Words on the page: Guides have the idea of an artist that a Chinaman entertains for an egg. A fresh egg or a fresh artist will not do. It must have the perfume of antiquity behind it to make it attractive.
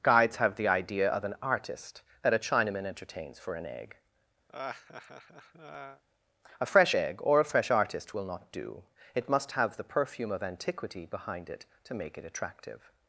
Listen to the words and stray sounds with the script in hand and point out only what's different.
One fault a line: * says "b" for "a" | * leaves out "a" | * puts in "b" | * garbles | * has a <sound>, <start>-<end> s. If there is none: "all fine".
* has a laugh, 4.5-6.0 s